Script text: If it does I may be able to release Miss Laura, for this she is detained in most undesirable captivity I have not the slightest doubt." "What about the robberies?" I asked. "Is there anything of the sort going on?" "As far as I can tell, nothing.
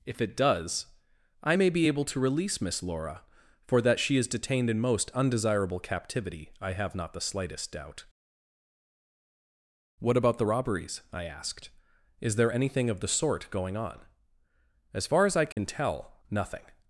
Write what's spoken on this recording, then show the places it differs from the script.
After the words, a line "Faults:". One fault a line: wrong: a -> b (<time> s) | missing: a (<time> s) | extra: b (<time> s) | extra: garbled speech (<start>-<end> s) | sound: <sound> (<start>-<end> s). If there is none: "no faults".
If it does I may be able to release Miss Laura, for that she is detained in most undesirable captivity I have not the slightest doubt." "What about the robberies?" I asked. "Is there anything of the sort going on?" "As far as I can tell, nothing.
Faults:
wrong: this -> that (3.8 s)
sound: dropout (15.5-15.6 s)